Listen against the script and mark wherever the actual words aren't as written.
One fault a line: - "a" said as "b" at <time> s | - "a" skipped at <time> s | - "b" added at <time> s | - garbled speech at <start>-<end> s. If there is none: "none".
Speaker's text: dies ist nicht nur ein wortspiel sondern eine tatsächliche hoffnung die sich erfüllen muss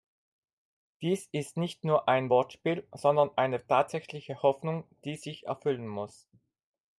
none